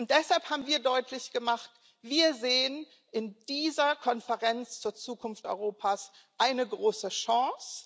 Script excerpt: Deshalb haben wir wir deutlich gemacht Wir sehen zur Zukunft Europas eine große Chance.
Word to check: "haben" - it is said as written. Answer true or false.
true